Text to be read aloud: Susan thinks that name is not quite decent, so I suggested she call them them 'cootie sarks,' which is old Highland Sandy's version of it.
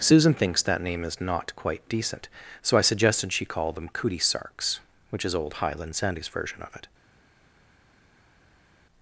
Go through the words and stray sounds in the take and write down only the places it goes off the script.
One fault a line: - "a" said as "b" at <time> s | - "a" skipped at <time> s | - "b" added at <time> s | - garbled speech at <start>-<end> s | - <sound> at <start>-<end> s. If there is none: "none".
- "them" skipped at 3.9 s